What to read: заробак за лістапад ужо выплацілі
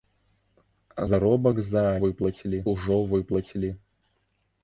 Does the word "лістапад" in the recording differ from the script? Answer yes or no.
yes